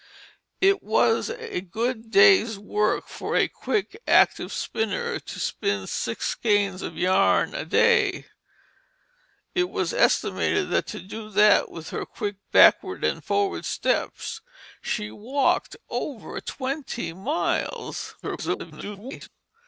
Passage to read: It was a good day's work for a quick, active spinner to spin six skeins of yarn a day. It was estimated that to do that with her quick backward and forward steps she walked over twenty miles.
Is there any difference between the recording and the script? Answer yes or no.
yes